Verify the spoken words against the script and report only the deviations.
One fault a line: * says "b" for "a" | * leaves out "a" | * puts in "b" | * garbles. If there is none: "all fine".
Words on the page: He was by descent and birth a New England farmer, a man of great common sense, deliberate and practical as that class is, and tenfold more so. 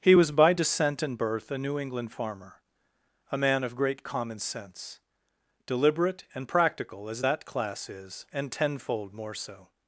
all fine